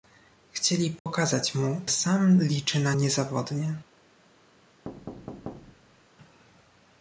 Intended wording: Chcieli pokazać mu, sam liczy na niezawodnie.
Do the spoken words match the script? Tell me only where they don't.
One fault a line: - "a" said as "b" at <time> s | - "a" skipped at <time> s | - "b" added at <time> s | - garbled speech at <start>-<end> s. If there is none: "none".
none